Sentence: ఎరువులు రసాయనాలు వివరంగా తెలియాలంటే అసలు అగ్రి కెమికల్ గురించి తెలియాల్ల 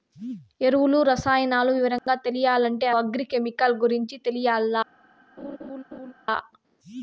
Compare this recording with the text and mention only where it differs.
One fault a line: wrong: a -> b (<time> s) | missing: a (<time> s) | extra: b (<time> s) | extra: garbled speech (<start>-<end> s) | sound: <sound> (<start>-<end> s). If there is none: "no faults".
sound: dropout (2.0-2.1 s)
missing: అసలు (2.9 s)
sound: laugh (5.4-6.1 s)